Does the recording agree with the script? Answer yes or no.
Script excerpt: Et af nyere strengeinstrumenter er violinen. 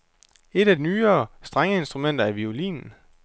yes